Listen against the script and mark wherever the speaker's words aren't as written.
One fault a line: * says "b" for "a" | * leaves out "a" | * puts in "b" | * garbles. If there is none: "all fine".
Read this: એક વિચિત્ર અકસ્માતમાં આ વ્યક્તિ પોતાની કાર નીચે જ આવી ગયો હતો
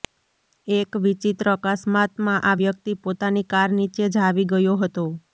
all fine